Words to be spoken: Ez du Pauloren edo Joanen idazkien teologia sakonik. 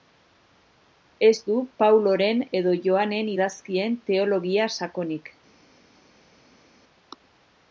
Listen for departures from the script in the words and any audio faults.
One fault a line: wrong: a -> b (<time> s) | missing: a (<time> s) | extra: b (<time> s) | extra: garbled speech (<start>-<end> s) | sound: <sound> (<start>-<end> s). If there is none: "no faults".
no faults